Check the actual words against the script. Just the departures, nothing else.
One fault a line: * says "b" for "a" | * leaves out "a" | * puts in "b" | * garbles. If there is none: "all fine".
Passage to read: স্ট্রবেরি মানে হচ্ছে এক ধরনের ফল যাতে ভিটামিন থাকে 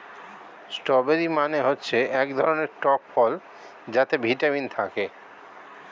* puts in "টক"